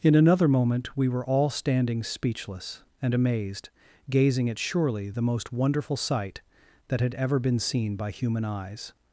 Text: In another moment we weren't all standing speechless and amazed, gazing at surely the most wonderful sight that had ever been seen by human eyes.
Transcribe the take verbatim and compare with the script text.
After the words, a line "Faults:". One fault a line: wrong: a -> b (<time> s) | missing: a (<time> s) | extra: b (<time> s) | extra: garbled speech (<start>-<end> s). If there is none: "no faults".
In another moment we were all standing speechless and amazed, gazing at surely the most wonderful sight that had ever been seen by human eyes.
Faults:
wrong: weren't -> were (1.1 s)